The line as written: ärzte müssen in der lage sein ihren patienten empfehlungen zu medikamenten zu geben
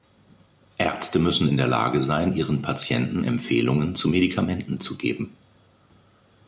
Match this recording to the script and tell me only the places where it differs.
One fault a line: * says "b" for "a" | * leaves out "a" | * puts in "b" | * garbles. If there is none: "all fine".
all fine